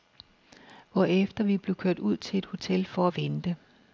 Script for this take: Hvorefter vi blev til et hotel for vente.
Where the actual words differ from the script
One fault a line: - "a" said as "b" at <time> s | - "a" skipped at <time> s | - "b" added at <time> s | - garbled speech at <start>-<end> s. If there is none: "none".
- "kørt ud" added at 1.8 s
- "at" added at 3.0 s